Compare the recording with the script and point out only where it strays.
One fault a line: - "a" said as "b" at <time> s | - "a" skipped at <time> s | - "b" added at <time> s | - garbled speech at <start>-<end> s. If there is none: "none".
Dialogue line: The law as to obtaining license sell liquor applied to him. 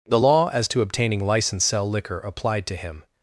none